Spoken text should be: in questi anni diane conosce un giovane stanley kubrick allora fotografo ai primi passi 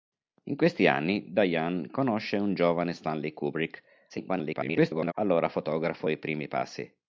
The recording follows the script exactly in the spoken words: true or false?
false